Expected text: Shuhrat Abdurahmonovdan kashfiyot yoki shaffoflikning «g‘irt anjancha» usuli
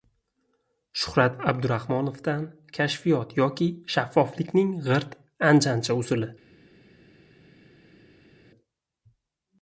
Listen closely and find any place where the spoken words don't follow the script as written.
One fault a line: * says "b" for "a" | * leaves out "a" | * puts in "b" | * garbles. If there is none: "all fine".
all fine